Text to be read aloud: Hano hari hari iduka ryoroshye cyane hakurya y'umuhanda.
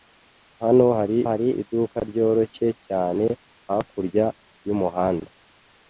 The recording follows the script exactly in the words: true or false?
true